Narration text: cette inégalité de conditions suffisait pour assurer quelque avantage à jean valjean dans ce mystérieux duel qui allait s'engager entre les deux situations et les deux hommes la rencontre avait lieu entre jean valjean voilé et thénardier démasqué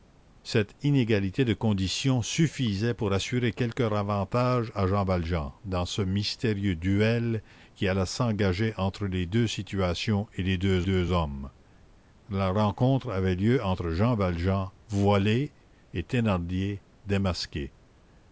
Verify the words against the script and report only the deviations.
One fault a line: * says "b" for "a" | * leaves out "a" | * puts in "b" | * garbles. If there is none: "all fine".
* puts in "deux"